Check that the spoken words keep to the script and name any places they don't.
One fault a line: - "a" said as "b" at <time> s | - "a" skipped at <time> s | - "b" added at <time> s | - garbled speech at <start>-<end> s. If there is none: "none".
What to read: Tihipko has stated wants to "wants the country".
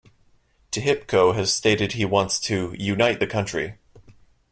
- "he" added at 1.9 s
- "wants" said as "unite" at 2.8 s